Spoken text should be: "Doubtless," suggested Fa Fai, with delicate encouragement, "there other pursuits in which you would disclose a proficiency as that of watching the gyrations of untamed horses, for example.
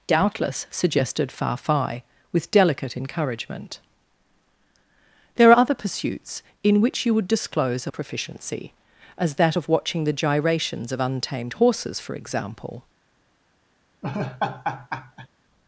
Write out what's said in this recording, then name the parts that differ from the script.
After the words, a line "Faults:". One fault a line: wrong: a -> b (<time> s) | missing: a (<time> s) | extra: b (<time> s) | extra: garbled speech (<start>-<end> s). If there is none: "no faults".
"Doubtless," suggested Fa Fai, with delicate encouragement, "there other pursuits in which you would disclose a proficiency as that of watching the gyrations of untamed horses, for example.
Faults:
no faults